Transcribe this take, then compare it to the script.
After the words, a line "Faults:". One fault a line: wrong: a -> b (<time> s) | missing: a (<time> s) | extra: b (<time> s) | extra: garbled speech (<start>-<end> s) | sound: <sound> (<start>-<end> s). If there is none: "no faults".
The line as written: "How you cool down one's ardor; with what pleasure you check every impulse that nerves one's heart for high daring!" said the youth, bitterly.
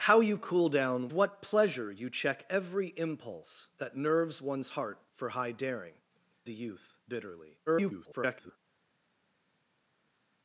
"How you cool down what pleasure you check every impulse that nerves one's heart for high daring!" the youth, bitterly. [garbled]
Faults:
missing: one's ardor with (1.1 s)
missing: said (6.0 s)
extra: garbled speech (7.7-8.6 s)